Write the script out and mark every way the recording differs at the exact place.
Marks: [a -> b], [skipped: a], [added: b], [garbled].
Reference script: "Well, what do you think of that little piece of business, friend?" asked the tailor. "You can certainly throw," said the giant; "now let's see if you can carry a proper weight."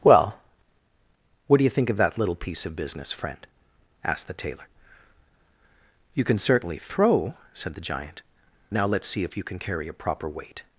"Well, what do you think of that little piece of business, friend?" asked the tailor. "You can certainly throw," said the giant; "now let's see if you can carry a proper weight."